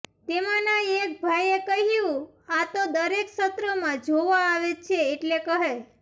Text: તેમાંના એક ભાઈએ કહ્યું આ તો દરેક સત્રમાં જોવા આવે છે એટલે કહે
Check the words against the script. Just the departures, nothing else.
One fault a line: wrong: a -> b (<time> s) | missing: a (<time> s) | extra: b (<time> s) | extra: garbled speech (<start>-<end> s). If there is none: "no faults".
no faults